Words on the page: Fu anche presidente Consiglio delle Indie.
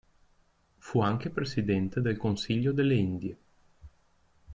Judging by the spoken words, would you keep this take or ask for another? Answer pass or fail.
fail